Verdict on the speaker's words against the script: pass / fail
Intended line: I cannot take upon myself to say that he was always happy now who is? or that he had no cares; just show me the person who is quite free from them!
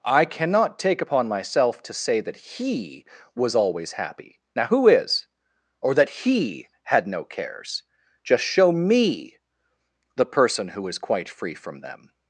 pass